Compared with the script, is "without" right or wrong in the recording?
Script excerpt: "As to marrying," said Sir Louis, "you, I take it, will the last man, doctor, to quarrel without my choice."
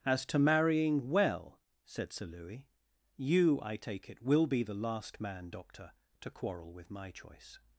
wrong